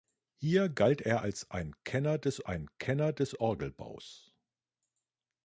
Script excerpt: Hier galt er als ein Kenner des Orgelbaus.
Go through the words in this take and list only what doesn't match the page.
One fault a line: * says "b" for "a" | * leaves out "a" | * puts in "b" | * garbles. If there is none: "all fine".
* puts in "ein Kenner des"